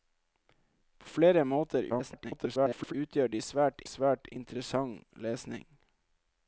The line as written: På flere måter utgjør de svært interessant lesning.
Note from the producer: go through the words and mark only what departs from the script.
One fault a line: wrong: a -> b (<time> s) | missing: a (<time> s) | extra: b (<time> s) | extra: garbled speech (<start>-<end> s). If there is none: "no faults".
extra: garbled speech (1.9-2.9 s)
extra: svært (3.9 s)